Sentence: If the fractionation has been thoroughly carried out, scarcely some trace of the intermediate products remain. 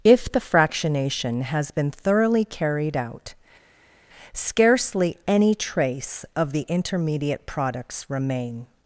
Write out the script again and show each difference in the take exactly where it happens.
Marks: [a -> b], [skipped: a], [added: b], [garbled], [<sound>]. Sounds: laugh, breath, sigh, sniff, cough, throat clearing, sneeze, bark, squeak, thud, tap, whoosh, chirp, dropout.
If the fractionation has been thoroughly carried out, scarcely [some -> any] trace of the intermediate products remain.